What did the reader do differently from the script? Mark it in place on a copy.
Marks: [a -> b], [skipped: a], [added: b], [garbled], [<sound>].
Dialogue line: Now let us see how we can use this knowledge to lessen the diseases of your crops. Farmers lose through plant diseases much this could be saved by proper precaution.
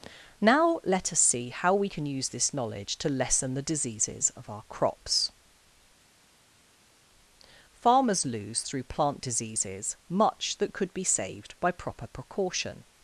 Now let us see how we can use this knowledge to lessen the diseases of [your -> our] crops. Farmers lose through plant diseases much [this -> that] could be saved by proper precaution.